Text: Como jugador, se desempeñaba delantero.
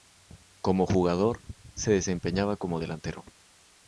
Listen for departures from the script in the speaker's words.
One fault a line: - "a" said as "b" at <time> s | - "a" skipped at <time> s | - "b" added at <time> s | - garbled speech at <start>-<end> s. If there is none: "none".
- "como" added at 2.6 s